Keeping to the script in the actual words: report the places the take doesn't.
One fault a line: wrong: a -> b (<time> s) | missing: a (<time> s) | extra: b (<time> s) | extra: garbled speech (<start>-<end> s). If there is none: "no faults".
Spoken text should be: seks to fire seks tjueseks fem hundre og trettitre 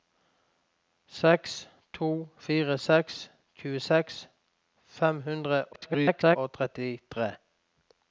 extra: garbled speech (5.7-6.4 s)